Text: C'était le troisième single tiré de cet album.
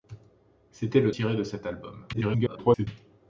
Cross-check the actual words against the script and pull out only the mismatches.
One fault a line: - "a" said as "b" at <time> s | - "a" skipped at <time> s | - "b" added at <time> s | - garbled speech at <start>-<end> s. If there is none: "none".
- "troisième single" skipped at 1.1 s
- garbled speech at 2.1-2.9 s